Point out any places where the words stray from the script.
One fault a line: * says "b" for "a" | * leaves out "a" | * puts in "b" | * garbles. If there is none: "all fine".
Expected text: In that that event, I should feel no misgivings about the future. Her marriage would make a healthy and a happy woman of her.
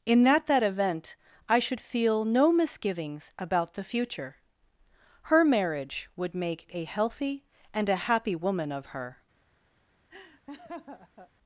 all fine